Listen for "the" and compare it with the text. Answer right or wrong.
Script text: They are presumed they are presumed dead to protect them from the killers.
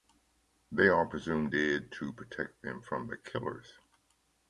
right